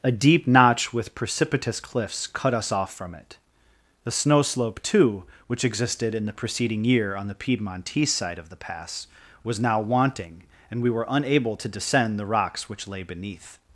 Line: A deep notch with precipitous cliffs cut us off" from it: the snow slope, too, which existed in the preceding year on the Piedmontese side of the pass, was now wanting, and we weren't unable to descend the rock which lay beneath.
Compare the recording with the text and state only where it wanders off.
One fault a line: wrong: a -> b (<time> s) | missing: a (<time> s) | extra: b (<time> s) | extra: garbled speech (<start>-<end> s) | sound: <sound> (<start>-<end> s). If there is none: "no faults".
wrong: weren't -> were (10.9 s)
wrong: rock -> rocks (12.2 s)